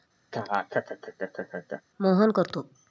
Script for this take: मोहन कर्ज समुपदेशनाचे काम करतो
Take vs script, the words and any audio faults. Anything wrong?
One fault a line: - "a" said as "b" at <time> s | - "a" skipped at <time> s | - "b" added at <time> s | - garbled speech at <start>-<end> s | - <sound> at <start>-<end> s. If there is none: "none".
- laugh at 0.3-1.8 s
- "कर्ज समुपदेशनाचे काम" skipped at 2.3 s